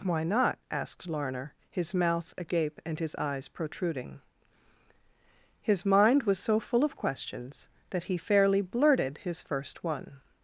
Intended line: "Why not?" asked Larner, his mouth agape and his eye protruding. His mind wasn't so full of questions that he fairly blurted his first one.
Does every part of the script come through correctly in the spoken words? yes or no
no